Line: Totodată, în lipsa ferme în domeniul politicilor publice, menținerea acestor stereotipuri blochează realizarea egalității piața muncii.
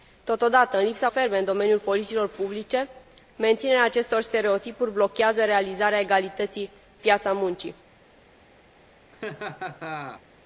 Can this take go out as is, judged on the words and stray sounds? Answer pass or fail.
fail